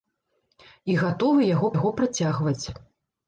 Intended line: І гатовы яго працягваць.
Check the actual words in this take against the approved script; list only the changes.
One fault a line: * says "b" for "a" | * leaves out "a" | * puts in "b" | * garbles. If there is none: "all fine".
* puts in "яго"